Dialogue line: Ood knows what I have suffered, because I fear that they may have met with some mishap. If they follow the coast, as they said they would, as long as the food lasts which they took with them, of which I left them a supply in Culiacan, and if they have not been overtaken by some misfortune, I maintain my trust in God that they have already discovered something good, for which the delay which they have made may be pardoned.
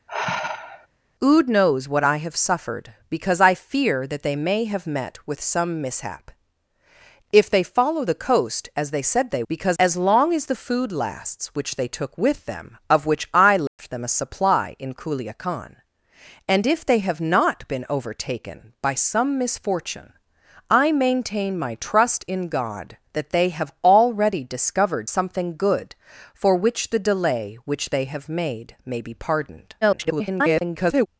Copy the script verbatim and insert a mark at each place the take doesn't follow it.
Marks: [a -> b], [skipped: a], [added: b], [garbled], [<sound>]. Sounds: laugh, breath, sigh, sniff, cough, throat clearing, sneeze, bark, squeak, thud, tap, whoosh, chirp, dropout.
[sigh] Ood knows what I have suffered, because I fear that they may have met with some mishap. If they follow the coast, as they said they [would, -> because] as long as the food lasts which they took with them, of which I left [dropout] them a supply in Culiacan, and if they have not been overtaken by some misfortune, I maintain my trust in God that they have already discovered something good, for which the delay which they have made may be pardoned. [garbled]